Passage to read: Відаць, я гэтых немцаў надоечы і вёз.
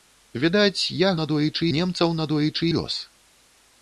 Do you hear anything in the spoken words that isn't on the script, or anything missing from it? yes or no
yes